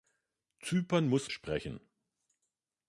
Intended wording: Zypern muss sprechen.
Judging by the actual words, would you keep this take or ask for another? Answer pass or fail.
pass